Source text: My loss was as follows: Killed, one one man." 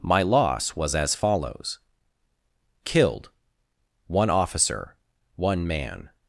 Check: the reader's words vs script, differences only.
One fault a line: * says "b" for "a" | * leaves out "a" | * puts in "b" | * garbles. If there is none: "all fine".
* puts in "officer"